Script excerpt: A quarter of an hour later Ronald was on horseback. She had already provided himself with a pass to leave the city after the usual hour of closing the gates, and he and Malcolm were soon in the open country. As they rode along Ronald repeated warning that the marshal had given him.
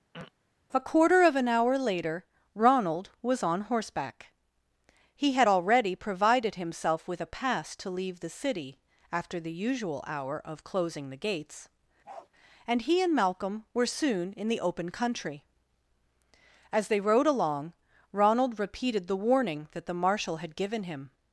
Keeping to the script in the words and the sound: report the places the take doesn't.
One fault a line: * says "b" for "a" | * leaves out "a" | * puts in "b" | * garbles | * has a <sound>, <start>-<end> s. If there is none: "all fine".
* has a throat clearing, 0.1-0.3 s
* says "He" for "She"
* has a bark, 12.0-12.3 s
* puts in "the"